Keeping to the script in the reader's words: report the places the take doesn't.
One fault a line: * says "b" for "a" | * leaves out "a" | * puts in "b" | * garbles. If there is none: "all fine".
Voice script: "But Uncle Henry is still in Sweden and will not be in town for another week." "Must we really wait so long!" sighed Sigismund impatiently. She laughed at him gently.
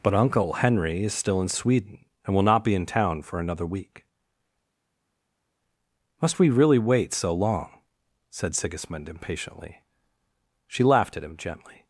* says "said" for "sighed"